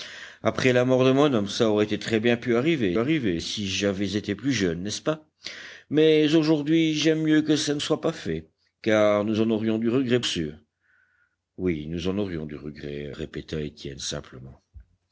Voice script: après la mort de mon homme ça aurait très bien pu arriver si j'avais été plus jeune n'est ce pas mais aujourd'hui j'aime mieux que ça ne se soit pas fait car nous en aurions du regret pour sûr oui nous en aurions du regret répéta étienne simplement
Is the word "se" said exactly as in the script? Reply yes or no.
no